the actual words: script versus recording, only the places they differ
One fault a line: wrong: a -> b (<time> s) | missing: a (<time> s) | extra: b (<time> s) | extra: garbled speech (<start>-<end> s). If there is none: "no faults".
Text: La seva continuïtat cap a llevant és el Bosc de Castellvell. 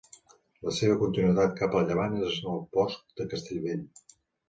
no faults